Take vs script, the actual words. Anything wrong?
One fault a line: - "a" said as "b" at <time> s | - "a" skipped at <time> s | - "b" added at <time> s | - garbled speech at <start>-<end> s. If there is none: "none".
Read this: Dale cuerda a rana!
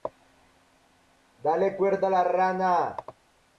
- "la" added at 2.1 s